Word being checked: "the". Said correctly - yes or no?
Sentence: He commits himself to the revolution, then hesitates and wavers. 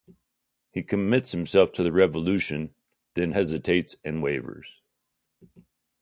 yes